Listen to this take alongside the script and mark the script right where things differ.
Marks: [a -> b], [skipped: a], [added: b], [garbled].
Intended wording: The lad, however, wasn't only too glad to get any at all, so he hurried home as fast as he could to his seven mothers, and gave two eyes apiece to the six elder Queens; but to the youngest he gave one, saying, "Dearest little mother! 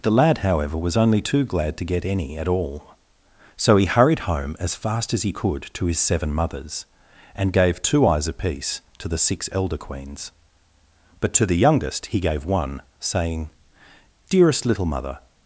The lad, however, [wasn't -> was] only too glad to get any at all, so he hurried home as fast as he could to his seven mothers, and gave two eyes apiece to the six elder Queens; but to the youngest he gave one, saying, "Dearest little mother!